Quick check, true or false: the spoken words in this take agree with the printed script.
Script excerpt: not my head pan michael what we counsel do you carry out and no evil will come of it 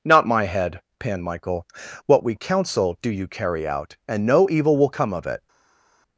true